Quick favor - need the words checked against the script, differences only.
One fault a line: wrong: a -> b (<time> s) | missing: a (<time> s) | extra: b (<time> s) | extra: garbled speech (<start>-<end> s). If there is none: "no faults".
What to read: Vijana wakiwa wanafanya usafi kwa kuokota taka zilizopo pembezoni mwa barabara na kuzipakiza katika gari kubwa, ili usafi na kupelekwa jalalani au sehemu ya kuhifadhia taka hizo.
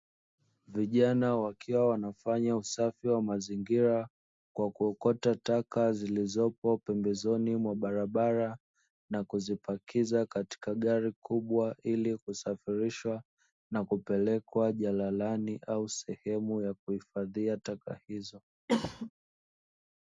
extra: wa mazingira (3.1 s)
wrong: usafi -> kusafirishwa (12.2 s)